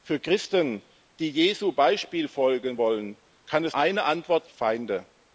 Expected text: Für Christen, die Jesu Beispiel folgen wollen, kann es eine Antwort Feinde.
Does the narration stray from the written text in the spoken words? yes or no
no